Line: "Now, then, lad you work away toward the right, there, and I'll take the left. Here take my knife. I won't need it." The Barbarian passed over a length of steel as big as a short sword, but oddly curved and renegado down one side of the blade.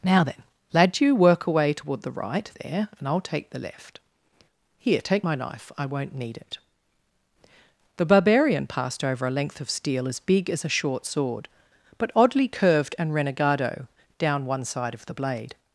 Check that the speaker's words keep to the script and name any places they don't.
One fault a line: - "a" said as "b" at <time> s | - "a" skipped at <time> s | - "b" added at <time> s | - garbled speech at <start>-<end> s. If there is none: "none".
none